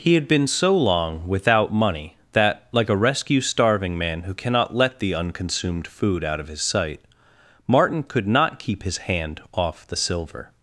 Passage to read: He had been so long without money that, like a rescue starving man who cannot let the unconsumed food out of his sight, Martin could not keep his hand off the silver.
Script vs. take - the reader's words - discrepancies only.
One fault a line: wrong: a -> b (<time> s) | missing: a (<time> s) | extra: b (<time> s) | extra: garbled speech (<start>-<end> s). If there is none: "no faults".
no faults